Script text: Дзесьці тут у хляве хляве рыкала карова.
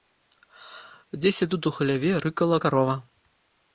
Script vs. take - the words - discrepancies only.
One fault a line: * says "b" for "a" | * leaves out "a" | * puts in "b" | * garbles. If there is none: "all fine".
* leaves out "хляве"